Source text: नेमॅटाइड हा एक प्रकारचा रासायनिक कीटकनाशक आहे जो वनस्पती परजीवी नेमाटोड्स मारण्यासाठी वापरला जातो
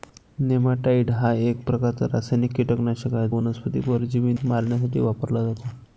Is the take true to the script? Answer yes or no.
no